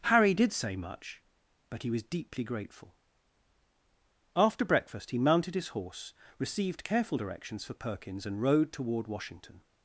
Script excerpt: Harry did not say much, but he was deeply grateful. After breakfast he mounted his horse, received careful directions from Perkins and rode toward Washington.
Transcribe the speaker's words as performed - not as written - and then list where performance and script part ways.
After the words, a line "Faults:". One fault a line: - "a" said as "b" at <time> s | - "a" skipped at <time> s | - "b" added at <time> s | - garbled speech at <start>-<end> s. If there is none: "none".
Harry did say much, but he was deeply grateful. After breakfast he mounted his horse, received careful directions for Perkins and rode toward Washington.
Faults:
- "not" skipped at 0.5 s
- "from" said as "for" at 7.6 s